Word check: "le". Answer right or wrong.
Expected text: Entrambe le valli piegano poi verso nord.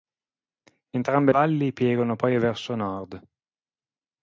wrong